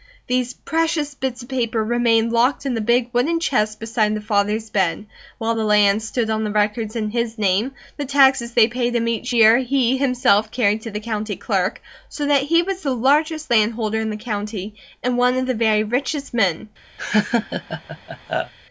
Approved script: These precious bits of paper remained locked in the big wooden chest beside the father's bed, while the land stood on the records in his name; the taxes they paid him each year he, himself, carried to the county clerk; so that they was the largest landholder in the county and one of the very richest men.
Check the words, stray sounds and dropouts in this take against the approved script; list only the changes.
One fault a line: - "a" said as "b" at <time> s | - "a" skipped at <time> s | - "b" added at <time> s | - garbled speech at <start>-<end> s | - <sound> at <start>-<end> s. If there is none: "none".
- "they" said as "he" at 12.4 s
- laugh at 17.0-18.5 s